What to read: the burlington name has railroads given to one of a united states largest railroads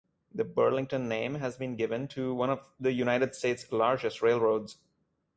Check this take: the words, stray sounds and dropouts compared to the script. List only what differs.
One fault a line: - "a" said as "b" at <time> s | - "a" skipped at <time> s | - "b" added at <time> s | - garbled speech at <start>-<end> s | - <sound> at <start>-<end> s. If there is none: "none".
- "railroads" said as "been" at 1.6 s
- "a" said as "the" at 2.8 s